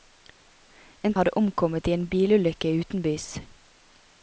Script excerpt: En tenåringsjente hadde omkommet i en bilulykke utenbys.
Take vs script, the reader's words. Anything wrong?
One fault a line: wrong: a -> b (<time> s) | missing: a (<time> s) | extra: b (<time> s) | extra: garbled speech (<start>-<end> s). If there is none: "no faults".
missing: tenåringsjente (1.1 s)